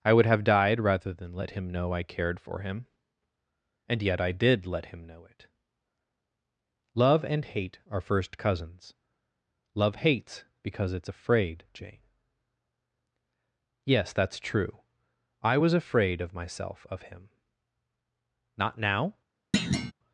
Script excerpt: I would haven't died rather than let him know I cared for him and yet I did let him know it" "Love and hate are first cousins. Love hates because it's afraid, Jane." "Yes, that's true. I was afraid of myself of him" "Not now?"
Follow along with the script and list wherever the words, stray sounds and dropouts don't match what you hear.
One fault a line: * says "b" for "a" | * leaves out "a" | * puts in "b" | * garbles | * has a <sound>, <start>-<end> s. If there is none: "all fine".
* says "have" for "haven't"
* has a thud, 19.5-19.9 s